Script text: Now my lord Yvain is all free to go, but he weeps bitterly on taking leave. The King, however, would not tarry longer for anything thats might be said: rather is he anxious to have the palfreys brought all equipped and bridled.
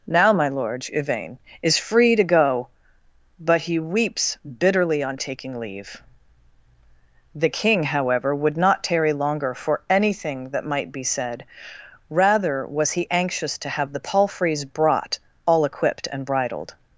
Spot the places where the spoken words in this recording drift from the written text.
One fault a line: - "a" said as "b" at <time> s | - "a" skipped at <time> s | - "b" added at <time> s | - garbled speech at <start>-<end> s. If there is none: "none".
- "all" skipped at 1.8 s
- "thats" said as "that" at 10.5 s
- "is" said as "was" at 12.6 s